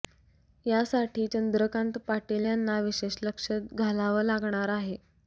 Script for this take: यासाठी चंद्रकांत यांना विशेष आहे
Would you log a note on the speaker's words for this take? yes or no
yes